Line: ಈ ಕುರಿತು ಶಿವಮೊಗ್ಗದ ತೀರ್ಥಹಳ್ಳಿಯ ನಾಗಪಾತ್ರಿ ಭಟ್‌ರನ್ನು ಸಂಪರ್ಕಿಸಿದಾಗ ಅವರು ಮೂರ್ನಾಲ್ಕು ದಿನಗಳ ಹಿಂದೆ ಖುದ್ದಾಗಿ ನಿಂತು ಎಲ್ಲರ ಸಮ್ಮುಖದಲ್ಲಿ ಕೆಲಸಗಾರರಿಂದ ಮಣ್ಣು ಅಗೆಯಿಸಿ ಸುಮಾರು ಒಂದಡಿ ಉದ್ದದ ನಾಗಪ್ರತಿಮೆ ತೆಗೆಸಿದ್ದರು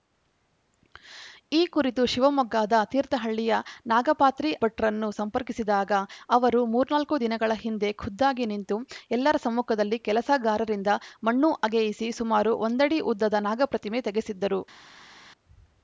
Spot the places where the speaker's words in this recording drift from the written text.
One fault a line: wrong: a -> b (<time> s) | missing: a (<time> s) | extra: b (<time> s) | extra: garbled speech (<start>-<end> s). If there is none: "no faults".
no faults